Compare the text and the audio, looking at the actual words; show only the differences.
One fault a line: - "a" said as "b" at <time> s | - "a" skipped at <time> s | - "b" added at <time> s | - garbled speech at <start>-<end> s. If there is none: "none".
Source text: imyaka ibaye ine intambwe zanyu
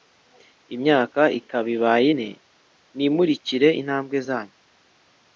- "ikaba" added at 1.4 s
- "nimurikire" added at 3.0 s